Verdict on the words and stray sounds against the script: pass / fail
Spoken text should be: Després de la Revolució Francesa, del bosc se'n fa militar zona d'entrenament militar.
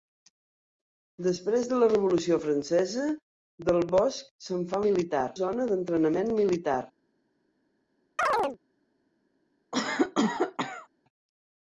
fail